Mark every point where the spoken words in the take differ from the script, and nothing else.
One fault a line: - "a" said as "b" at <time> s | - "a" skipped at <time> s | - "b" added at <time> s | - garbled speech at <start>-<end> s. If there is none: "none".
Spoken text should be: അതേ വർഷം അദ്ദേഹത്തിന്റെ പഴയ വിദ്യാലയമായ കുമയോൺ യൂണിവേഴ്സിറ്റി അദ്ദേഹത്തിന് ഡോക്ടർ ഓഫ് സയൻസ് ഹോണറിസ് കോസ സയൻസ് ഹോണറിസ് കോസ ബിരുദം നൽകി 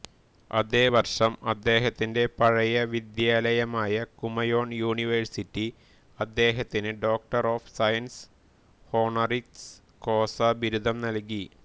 - "സയൻസ് ഹോണറിസ് കോസ" skipped at 10.4 s